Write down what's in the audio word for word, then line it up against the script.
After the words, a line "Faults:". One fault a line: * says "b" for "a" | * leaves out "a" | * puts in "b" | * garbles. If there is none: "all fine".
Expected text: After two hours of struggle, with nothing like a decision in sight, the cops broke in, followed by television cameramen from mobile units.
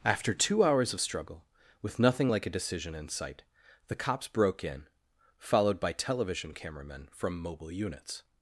After two hours of struggle, with nothing like a decision in sight, the cops broke in, followed by television cameramen from mobile units.
Faults:
all fine